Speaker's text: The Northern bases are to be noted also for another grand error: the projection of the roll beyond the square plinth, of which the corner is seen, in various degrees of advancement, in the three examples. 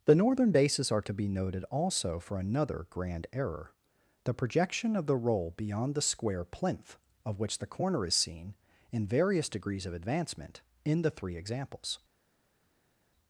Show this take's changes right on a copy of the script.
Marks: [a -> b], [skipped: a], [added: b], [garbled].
The Northern bases are to be noted also for another grand error: the projection of the roll beyond the square plinth, of which the corner is seen, in various degrees of advancement, in the three examples.